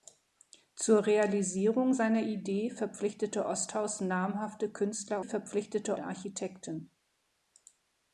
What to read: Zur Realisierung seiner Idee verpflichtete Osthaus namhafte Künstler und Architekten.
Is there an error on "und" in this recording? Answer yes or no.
yes